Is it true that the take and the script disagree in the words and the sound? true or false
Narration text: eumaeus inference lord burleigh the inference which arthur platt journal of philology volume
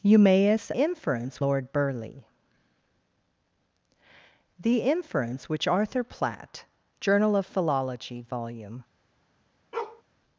true